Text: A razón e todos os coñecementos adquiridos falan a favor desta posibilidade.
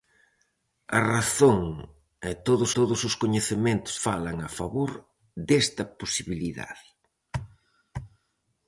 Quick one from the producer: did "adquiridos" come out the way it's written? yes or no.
no